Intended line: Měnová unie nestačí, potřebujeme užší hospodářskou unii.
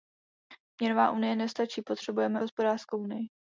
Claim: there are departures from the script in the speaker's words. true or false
true